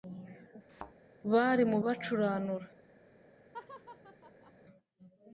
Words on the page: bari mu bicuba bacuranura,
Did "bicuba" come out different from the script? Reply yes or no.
yes